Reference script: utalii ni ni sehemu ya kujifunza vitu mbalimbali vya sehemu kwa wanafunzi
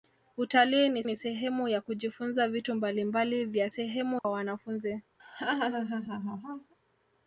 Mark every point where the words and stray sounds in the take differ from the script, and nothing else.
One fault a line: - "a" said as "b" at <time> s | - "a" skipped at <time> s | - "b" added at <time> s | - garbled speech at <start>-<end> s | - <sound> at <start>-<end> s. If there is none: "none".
- dropout at 4.2-4.2 s
- laugh at 5.2-6.7 s